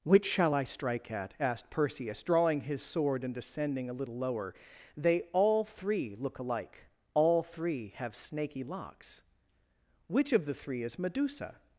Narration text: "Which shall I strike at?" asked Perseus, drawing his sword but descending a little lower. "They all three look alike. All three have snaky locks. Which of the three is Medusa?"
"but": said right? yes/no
no